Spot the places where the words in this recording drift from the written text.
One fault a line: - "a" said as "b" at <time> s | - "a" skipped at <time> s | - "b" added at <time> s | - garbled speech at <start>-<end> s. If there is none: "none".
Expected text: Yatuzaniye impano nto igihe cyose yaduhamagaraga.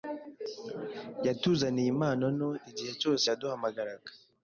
none